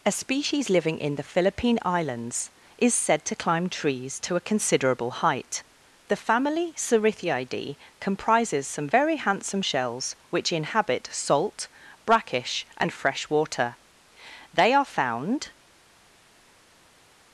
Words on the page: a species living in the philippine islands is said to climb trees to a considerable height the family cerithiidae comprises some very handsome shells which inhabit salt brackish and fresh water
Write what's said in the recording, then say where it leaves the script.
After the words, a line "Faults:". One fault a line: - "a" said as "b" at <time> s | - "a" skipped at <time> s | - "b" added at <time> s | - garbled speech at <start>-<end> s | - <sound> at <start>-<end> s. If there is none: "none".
a species living in the philippine islands is said to climb trees to a considerable height the family cerithiidae comprises some very handsome shells which inhabit salt brackish and fresh water they are found
Faults:
- "they are found" added at 14.5 s